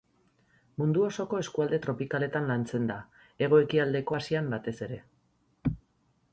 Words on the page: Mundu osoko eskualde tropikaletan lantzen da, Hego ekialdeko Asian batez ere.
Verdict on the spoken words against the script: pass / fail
pass